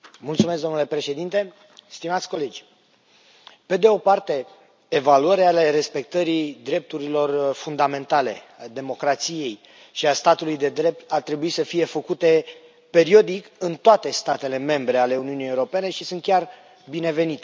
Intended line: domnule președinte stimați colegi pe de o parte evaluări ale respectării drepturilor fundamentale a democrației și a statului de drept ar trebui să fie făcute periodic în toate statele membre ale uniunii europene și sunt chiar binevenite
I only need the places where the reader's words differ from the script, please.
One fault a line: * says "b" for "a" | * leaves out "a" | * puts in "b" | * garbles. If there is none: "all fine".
all fine